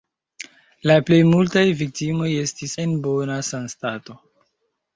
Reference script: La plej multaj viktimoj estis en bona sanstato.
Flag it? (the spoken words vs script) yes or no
no